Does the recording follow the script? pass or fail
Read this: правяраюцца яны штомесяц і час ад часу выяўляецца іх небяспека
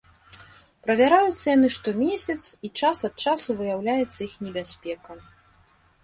pass